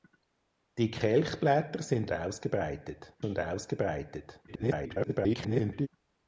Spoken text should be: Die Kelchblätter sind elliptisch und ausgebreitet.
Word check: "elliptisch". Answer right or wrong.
wrong